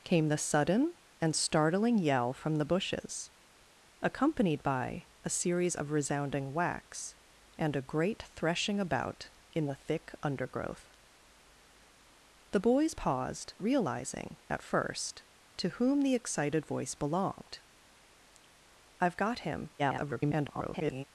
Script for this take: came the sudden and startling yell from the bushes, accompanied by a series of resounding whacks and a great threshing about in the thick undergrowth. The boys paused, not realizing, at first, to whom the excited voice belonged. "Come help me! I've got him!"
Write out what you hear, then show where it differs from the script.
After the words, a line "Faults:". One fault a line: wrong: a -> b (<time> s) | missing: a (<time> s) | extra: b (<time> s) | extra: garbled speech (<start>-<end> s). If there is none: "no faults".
came the sudden and startling yell from the bushes, accompanied by a series of resounding whacks and a great threshing about in the thick undergrowth. The boys paused, realizing, at first, to whom the excited voice belonged! "I've got him!" [garbled]
Faults:
missing: not (13.5 s)
missing: Come help me (17.6 s)
extra: garbled speech (19.8-21.0 s)